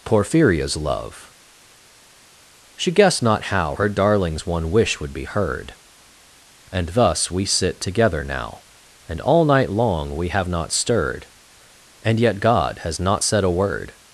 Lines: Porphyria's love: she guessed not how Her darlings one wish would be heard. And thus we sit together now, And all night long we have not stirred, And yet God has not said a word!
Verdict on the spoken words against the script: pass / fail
pass